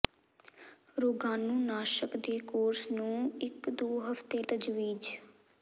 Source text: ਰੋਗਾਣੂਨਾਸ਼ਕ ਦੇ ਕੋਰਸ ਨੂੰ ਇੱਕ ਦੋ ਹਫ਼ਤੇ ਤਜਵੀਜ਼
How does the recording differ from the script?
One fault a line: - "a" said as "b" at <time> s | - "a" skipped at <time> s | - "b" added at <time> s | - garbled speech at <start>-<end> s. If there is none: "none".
none